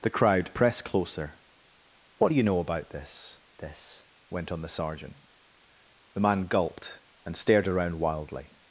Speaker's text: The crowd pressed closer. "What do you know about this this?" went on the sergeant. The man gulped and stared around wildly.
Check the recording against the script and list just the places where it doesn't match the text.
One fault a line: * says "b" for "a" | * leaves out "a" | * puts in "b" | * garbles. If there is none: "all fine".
all fine